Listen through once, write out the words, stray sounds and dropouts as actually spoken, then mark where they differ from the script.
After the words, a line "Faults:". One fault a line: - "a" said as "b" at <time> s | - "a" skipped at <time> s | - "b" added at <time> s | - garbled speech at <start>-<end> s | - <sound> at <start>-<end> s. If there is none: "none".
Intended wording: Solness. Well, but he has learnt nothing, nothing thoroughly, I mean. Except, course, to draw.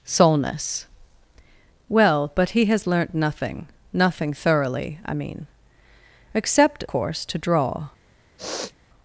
Solness. Well, but he has learnt nothing, nothing thoroughly, I mean. Except, course, to draw.
Faults:
- sniff at 8.4-8.7 s